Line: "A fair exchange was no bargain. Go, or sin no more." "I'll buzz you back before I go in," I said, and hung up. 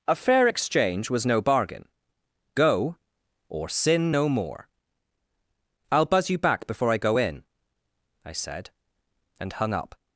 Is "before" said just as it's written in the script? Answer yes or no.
yes